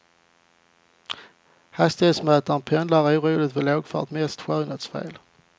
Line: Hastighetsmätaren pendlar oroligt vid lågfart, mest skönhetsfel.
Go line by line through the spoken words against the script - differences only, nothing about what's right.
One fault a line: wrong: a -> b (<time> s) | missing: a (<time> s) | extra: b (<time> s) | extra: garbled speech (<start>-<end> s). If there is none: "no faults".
no faults